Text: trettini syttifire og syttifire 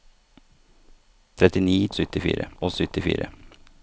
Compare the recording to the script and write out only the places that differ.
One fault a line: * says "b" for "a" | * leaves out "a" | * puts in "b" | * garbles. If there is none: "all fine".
all fine